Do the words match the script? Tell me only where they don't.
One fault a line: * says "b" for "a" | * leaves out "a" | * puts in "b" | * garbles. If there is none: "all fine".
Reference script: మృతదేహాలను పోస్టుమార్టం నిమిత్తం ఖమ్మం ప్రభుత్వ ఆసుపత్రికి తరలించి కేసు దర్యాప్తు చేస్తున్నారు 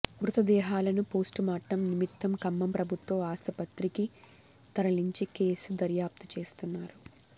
all fine